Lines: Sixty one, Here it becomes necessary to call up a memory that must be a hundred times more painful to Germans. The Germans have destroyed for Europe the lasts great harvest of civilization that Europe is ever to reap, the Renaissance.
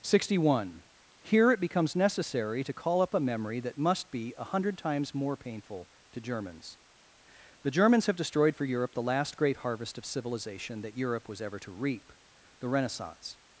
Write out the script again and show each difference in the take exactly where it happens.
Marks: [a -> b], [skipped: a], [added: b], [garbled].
Sixty one, Here it becomes necessary to call up a memory that must be a hundred times more painful to Germans. The Germans have destroyed for Europe the [lasts -> last] great harvest of civilization that Europe [is -> was] ever to reap, the Renaissance.